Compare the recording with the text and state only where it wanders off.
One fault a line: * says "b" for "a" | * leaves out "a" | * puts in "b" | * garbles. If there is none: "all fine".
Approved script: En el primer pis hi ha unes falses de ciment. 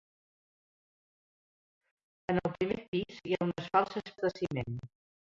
all fine